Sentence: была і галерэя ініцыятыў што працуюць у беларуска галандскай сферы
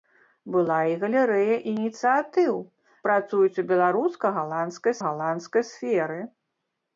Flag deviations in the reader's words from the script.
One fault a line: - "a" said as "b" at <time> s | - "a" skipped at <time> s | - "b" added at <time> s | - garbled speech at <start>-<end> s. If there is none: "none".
- "што" skipped at 2.5 s
- "галандскай" added at 5.1 s